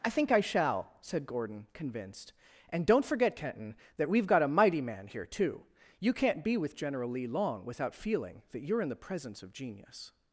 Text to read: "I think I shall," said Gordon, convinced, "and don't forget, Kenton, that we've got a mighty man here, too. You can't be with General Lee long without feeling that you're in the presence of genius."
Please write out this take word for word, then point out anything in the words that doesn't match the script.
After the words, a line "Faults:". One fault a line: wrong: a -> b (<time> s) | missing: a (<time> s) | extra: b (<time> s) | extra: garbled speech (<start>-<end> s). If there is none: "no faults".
"I think I shall," said Gordon, convinced, "and don't forget, Kenton, that we've got a mighty man here, too. You can't be with General Lee long without feeling that you're in the presence of genius."
Faults:
no faults